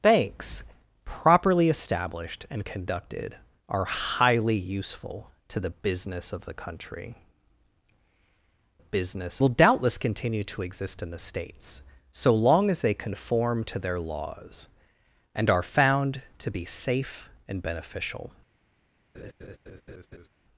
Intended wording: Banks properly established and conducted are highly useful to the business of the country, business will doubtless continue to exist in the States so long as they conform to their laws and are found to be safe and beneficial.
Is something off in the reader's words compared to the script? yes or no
no